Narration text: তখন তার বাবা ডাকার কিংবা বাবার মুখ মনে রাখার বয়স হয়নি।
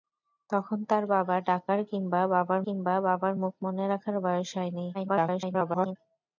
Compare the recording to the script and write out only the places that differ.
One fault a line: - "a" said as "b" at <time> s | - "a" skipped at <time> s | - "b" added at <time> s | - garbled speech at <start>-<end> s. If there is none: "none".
- "কিংবা বাবার" added at 2.6 s
- garbled speech at 4.9-6.0 s